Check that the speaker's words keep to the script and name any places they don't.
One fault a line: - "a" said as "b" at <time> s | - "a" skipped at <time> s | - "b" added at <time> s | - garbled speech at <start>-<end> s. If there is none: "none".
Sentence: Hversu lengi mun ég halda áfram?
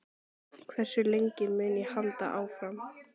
none